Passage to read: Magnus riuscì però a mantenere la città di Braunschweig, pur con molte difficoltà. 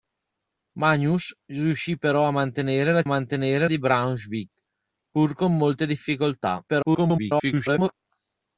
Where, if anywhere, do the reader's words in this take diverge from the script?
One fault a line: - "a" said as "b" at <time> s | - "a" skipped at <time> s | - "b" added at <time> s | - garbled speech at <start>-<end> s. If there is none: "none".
- "città" said as "mantenere" at 3.1 s
- garbled speech at 6.7-7.9 s